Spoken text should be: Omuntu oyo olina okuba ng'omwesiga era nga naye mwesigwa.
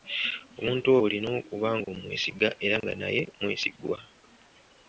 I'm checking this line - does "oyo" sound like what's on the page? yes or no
no